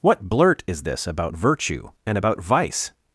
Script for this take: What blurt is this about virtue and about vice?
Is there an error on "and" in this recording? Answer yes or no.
no